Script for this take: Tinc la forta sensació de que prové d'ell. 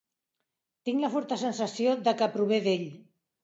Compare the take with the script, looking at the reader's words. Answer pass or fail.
pass